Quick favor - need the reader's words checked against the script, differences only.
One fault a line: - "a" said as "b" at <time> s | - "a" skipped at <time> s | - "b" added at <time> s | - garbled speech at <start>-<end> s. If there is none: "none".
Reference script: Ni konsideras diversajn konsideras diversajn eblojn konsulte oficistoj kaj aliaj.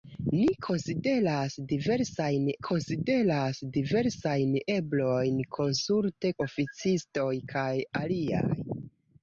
none